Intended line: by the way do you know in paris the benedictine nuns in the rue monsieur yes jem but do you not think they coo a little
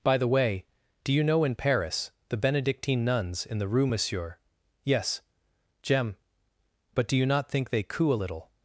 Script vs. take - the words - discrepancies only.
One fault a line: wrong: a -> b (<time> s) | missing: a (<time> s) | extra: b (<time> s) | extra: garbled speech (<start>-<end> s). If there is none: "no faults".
no faults